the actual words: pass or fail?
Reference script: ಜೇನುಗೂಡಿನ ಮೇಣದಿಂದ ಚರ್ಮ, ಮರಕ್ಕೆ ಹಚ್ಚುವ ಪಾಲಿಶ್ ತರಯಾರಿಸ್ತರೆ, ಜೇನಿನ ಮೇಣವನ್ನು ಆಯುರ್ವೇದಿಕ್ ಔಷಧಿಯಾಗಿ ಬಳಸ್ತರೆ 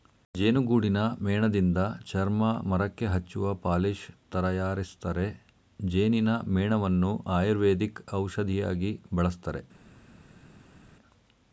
pass